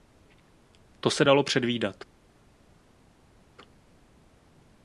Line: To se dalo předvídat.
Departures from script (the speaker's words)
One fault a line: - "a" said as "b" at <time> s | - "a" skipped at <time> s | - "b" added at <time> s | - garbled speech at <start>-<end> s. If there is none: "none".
none